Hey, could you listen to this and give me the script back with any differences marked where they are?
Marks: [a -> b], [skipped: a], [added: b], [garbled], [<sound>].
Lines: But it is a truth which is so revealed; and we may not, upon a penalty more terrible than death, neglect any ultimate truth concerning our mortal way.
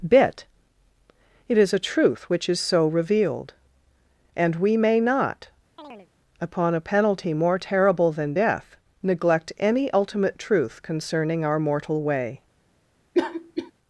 [But -> Bit] it is a truth which is so revealed; and we may not, [chirp] upon a penalty more terrible than death, neglect any ultimate truth concerning our mortal way. [cough]